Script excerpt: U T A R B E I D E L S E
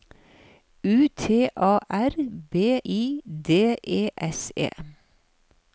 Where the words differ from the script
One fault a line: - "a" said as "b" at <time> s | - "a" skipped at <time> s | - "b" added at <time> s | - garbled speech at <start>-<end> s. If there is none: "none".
- "E" skipped at 2.8 s
- "L" skipped at 4.1 s